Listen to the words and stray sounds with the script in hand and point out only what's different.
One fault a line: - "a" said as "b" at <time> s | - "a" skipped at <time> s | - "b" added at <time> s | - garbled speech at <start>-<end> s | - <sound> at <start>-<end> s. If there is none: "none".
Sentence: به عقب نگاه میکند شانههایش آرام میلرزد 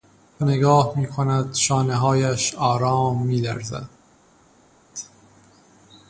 - "عقب" skipped at 0.5 s